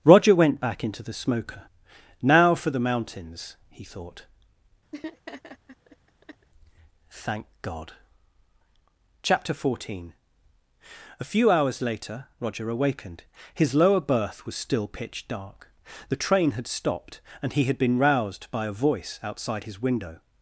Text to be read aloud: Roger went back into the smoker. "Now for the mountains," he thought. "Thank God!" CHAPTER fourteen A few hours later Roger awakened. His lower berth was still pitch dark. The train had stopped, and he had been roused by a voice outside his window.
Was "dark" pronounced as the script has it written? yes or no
yes